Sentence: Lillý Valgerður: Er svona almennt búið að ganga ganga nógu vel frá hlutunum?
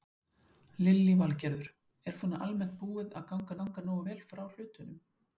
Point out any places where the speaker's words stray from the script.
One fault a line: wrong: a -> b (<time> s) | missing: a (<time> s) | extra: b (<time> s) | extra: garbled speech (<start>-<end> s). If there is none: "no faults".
no faults